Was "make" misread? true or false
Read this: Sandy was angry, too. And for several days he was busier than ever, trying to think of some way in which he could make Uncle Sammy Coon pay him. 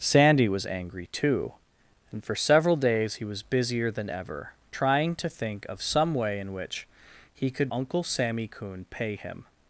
true